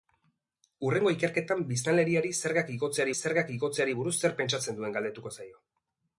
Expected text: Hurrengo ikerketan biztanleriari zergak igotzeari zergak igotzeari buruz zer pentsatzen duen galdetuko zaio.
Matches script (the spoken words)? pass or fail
pass